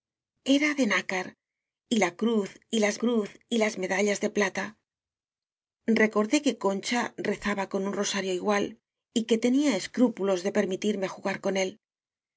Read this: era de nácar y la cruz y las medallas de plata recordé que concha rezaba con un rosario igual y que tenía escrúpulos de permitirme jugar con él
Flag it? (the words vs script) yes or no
yes